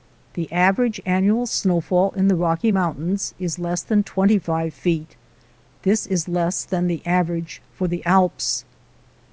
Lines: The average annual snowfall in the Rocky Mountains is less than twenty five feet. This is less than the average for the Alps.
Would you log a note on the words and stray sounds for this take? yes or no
no